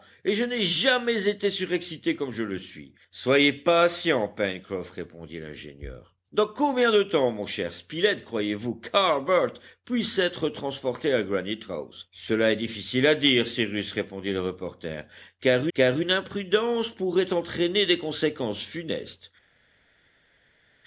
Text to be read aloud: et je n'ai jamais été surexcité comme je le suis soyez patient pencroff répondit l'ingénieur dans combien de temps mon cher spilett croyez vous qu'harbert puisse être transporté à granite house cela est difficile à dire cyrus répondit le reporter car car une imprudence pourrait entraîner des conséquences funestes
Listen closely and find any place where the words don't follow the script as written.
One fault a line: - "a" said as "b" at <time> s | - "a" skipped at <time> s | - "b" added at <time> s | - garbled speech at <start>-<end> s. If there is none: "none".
none